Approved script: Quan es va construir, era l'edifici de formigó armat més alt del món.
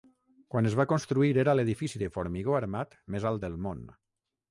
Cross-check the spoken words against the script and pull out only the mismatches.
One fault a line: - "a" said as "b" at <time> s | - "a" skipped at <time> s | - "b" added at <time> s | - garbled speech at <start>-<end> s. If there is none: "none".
none